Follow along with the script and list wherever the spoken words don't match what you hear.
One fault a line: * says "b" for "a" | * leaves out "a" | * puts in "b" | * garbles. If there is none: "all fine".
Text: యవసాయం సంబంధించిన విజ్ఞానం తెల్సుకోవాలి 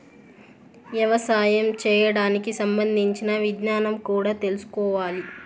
* puts in "చేయడానికి"
* puts in "కూడా"